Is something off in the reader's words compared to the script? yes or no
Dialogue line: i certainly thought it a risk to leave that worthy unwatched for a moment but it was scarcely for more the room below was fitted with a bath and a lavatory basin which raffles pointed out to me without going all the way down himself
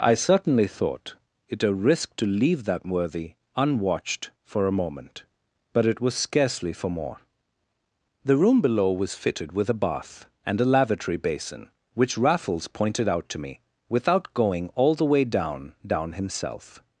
yes